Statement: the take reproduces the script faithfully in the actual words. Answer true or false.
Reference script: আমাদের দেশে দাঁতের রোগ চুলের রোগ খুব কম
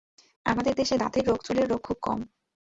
true